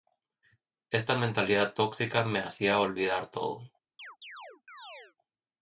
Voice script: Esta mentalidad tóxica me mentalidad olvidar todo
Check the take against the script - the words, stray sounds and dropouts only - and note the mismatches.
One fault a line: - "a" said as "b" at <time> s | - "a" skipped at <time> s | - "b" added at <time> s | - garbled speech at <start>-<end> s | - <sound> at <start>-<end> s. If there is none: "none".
- "mentalidad" said as "hacía" at 2.4 s
- chirp at 4.0-5.2 s